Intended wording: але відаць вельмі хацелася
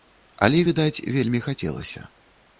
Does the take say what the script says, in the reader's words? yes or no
yes